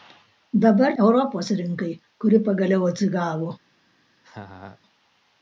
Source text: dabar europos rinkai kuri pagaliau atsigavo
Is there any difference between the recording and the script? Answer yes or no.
no